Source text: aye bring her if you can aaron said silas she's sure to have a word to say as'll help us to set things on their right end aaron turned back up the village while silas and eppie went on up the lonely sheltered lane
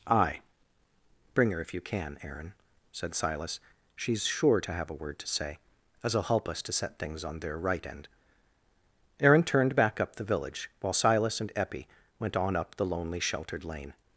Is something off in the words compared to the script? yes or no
no